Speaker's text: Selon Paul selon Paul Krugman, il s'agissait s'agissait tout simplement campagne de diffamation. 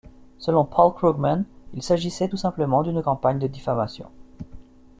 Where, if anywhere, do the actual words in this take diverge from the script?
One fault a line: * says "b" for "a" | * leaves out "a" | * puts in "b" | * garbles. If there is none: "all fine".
* leaves out "selon Paul"
* leaves out "s'agissait"
* puts in "d'une"